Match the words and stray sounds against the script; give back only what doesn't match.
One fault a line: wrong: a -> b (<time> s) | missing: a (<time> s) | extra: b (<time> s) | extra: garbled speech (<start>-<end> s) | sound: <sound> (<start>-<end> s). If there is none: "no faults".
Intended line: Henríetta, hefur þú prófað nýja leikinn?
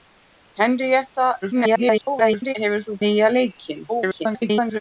extra: garbled speech (1.4-2.5 s)
missing: prófað (3.0 s)
extra: garbled speech (3.9-4.8 s)